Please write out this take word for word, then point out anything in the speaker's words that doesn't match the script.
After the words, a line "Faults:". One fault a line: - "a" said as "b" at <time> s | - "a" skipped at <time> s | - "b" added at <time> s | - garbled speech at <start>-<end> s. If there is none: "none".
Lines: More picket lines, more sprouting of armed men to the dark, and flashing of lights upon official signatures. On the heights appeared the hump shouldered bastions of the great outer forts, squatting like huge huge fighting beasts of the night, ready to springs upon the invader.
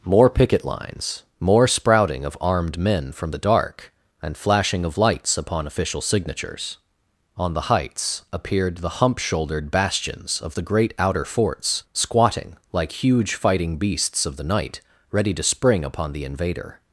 More picket lines, more sprouting of armed men from the dark, and flashing of lights upon official signatures. On the heights appeared the hump shouldered bastions of the great outer forts, squatting like huge fighting beasts of the night, ready to spring upon the invader.
Faults:
- "to" said as "from" at 3.1 s
- "huge" skipped at 13.3 s
- "springs" said as "spring" at 15.4 s